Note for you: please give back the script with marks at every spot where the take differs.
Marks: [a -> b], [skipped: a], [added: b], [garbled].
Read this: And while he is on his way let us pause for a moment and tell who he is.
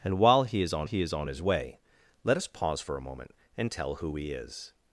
And while he is on [added: he is on] his way let us pause for a moment and tell who he is.